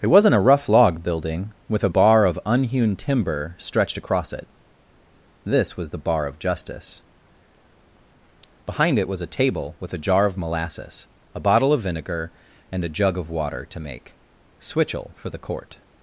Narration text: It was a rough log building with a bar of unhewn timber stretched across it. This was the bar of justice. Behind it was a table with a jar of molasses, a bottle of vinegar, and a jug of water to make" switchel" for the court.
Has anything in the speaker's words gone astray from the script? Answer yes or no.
yes